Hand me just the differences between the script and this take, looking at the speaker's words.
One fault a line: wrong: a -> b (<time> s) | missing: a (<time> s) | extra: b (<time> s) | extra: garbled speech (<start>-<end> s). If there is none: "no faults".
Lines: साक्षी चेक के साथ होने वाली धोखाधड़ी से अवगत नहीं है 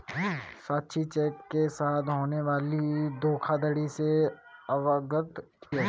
missing: नहीं (5.4 s)